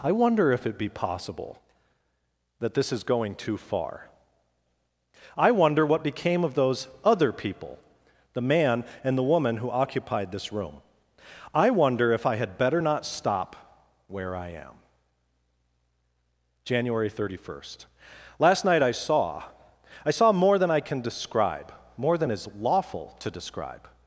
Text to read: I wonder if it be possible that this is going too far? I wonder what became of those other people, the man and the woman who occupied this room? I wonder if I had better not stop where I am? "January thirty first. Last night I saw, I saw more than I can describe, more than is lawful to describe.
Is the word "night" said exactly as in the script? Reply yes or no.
yes